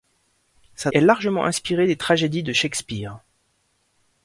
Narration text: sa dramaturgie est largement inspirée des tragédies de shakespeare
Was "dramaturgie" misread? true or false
true